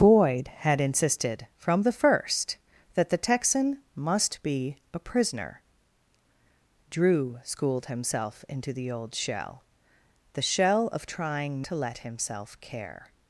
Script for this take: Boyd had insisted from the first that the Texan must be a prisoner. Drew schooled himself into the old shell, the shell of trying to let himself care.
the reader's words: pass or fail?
pass